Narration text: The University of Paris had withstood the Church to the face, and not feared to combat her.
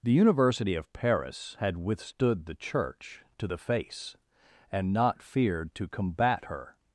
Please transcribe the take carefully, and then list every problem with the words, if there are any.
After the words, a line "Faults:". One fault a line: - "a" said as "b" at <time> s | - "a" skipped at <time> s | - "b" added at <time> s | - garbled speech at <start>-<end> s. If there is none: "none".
The University of Paris had withstood the Church to the face, and not feared to combat her.
Faults:
none